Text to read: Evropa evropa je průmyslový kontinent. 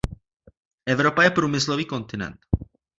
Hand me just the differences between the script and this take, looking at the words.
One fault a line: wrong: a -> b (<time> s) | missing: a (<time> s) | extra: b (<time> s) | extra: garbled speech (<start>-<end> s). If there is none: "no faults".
missing: evropa (1.2 s)